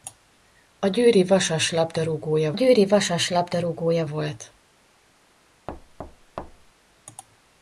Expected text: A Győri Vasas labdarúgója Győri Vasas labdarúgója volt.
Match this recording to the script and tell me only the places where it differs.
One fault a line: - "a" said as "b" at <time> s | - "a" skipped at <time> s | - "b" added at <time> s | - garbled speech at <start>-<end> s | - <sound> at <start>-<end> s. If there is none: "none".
- thud at 5.7-6.7 s